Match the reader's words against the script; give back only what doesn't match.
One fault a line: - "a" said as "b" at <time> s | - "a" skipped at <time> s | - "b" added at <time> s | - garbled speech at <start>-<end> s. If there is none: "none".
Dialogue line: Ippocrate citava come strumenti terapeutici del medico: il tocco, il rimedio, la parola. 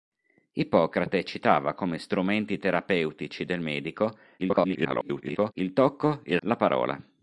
- garbled speech at 4.4-5.5 s
- "rimedio" skipped at 6.4 s